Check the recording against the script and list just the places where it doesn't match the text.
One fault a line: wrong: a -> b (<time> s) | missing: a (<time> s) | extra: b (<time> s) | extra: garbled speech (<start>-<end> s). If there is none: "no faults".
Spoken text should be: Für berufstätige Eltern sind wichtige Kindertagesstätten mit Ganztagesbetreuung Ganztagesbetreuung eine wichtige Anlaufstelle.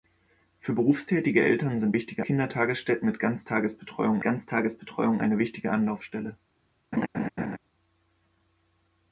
no faults